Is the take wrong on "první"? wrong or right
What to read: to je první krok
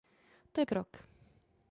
wrong